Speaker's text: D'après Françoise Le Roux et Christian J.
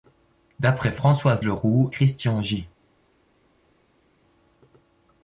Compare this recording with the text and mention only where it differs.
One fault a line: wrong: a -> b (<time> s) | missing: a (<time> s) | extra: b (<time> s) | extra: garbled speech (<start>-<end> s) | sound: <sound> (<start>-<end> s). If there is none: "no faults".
missing: et (1.9 s)